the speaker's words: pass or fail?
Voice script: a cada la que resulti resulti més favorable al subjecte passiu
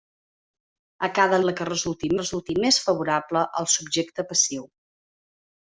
pass